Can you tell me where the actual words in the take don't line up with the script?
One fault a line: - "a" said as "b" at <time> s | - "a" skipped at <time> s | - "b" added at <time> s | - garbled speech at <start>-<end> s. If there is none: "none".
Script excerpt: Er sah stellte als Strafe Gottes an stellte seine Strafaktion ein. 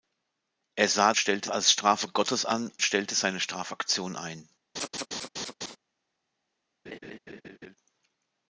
none